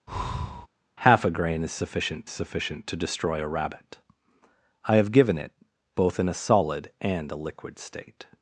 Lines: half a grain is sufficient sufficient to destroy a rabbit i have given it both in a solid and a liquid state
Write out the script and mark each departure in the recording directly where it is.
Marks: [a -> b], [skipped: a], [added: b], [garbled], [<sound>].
[breath] half a grain is sufficient sufficient to destroy a rabbit i have given it both in a solid and a liquid state